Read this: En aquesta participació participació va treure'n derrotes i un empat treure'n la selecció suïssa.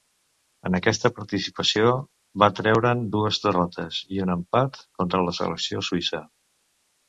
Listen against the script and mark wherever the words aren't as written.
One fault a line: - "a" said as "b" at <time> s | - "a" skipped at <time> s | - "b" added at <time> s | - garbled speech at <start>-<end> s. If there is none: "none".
- "participació" skipped at 1.9 s
- "dues" added at 3.2 s
- "treure'n" said as "contra" at 5.0 s